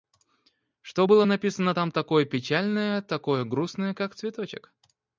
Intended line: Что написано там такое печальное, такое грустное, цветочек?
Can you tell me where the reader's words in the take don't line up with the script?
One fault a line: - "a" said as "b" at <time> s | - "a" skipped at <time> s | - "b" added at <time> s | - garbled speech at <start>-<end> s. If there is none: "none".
- "было" added at 1.0 s
- "как" added at 3.9 s